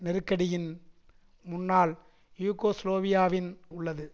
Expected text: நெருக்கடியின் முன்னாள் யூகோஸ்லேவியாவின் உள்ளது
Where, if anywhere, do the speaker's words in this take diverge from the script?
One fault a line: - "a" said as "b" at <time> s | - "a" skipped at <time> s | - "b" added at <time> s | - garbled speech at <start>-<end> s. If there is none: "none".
none